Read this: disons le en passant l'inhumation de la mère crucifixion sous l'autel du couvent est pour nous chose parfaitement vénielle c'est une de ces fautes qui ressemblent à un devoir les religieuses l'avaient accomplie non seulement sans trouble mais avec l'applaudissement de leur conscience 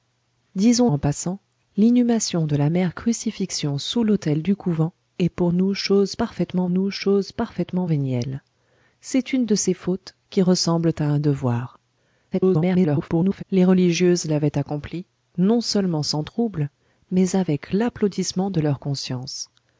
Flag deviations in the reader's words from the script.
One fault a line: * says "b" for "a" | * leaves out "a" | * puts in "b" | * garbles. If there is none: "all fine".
* leaves out "le"
* puts in "nous chose parfaitement"
* garbles